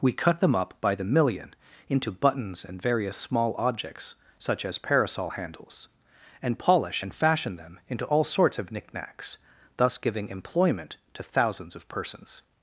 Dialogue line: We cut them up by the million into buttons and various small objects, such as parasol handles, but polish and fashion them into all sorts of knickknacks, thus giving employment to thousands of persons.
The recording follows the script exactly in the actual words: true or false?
false